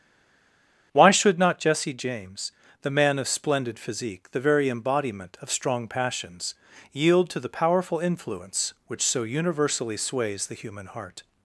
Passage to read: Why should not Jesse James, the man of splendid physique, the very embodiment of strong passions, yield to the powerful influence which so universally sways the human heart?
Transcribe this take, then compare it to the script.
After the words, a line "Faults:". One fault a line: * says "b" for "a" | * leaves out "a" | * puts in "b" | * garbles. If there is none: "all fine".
Why should not Jesse James, the man of splendid physique, the very embodiment of strong passions, yield to the powerful influence which so universally sways the human heart?
Faults:
all fine